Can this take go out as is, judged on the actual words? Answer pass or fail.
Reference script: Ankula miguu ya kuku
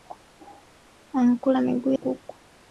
fail